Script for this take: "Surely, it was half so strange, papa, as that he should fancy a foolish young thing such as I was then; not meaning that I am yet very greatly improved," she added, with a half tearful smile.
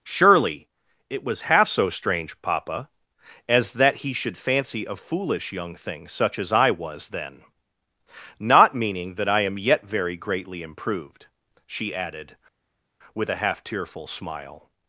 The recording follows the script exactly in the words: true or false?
true